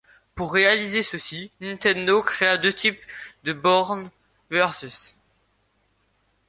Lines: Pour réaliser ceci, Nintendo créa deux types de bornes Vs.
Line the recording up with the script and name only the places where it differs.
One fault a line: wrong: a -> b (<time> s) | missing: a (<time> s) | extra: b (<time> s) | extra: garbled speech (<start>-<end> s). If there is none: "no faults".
no faults